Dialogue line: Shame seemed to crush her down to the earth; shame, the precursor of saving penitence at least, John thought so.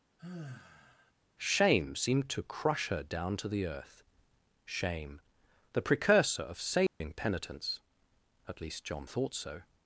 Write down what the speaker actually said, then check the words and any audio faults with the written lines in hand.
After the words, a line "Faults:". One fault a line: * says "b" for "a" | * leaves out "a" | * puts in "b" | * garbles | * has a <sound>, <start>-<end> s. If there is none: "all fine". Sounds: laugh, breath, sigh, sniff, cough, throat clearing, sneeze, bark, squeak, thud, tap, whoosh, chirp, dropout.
Shame seemed to crush her down to the earth; shame, the precursor of saving penitence at least, John thought so.
Faults:
* has a sigh, 0.2-1.1 s
* has a dropout, 6.9-7.0 s